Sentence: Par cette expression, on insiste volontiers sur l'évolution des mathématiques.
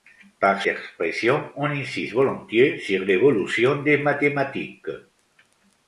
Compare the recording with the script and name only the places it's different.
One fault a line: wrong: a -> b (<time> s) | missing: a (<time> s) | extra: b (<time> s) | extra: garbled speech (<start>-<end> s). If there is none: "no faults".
missing: cette (0.6 s)